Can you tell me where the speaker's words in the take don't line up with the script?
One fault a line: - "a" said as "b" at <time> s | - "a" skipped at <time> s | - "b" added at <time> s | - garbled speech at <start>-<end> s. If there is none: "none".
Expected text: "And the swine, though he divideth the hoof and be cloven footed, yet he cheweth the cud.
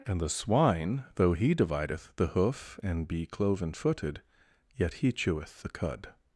none